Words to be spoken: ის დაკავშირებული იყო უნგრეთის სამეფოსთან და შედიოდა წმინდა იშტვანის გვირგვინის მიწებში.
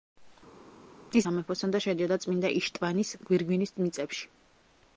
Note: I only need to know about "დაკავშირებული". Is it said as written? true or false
false